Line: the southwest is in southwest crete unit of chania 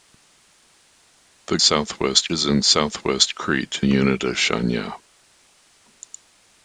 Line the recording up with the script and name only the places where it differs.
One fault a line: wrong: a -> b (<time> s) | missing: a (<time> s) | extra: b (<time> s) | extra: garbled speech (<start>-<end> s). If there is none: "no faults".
no faults